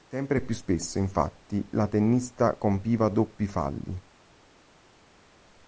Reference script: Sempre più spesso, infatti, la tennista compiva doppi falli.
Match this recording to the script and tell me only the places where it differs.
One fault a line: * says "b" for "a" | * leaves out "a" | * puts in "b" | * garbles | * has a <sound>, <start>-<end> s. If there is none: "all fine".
all fine